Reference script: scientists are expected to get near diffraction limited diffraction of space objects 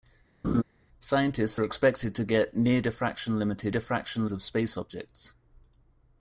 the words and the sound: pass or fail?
fail